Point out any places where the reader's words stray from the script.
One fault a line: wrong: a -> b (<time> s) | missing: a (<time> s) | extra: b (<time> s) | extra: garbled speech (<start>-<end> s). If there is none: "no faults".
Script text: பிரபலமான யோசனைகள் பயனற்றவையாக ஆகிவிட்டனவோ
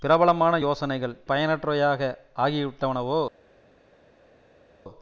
no faults